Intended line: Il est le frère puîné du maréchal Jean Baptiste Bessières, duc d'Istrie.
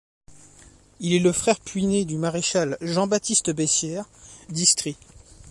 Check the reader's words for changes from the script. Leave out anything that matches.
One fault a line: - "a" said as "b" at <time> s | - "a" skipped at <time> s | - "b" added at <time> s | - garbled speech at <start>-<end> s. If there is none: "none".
- "duc" skipped at 4.1 s